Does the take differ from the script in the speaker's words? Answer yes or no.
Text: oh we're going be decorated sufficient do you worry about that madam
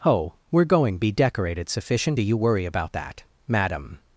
no